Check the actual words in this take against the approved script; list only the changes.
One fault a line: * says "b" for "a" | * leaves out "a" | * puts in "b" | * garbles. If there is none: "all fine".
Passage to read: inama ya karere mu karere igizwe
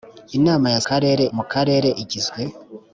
all fine